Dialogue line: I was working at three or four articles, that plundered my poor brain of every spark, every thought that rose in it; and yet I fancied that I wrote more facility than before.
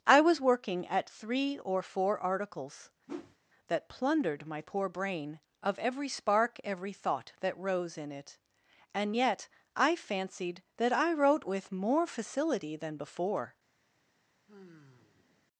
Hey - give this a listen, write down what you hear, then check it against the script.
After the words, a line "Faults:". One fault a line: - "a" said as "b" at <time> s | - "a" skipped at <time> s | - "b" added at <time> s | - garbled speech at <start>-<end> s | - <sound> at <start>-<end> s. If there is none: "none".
I was working at three or four articles, that plundered my poor brain of every spark, every thought that rose in it; and yet I fancied that I wrote with more facility than before.
Faults:
- whoosh at 3.1-3.4 s
- "with" added at 11.5 s
- sigh at 14.5-15.5 s